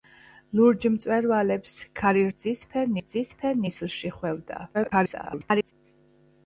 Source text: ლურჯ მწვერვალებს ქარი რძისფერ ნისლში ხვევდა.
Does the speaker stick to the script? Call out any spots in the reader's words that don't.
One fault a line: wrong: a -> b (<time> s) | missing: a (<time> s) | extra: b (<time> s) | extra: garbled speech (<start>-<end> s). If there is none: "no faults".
extra: რძისფერ (3.0 s)
extra: garbled speech (4.7-5.7 s)